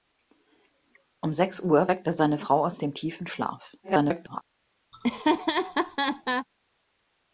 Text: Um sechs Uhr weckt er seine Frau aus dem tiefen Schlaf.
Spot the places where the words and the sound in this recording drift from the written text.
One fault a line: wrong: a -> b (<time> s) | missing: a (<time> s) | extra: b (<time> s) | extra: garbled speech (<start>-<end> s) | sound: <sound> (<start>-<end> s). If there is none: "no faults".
extra: garbled speech (3.8-4.4 s)
sound: laugh (4.9-6.5 s)